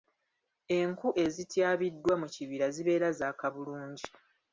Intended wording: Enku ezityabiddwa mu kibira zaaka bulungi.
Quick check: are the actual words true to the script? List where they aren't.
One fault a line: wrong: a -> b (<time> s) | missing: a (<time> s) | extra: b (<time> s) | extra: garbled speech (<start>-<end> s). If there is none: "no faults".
extra: zibeera (2.8 s)